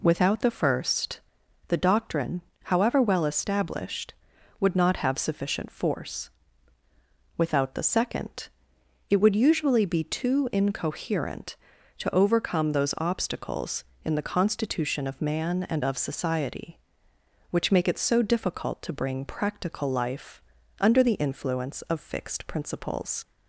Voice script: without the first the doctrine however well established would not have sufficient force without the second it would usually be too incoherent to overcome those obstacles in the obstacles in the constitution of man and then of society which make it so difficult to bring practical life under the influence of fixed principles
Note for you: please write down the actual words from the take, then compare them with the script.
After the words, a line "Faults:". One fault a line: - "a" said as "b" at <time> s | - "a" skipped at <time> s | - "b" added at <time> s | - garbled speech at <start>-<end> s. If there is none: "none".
without the first the doctrine however well established would not have sufficient force without the second it would usually be too incoherent to overcome those obstacles in the constitution of man and of society which make it so difficult to bring practical life under the influence of fixed principles
Faults:
- "obstacles in the" skipped at 14.3 s
- "then" skipped at 15.8 s